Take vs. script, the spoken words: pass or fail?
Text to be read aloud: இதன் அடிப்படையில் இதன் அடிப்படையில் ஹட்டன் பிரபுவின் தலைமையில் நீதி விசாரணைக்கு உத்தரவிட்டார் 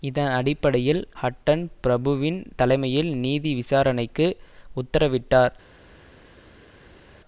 fail